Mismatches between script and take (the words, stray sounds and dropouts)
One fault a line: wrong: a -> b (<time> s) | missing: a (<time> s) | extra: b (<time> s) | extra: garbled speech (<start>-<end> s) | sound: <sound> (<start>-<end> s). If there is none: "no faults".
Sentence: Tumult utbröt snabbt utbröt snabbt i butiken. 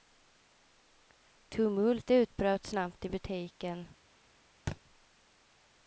missing: utbröt snabbt (3.0 s)
sound: thud (4.7-4.8 s)